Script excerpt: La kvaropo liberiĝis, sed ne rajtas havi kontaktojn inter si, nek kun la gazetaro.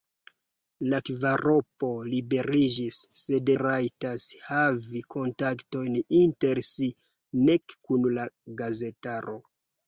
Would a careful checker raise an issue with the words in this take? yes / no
yes